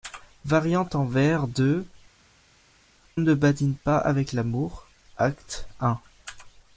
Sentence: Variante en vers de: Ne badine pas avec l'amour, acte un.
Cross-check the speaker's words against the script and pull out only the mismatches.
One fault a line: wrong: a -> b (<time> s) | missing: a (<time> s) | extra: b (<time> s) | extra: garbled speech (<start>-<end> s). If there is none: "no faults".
no faults